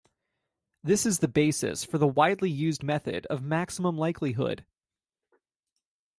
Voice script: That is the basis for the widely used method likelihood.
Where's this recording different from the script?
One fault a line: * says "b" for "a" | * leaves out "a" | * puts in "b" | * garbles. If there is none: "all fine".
* says "This" for "That"
* puts in "of maximum"